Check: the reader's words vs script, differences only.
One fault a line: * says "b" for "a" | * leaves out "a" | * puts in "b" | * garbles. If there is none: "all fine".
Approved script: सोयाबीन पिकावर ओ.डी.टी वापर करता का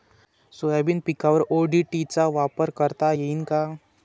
* puts in "चा"
* puts in "येईन"